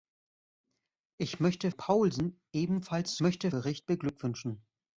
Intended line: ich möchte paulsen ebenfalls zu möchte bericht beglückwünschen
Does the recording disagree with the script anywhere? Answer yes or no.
no